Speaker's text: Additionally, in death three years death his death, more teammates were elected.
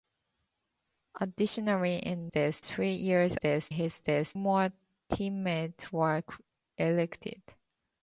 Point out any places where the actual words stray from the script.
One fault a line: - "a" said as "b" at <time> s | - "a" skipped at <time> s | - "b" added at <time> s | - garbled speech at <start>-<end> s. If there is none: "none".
none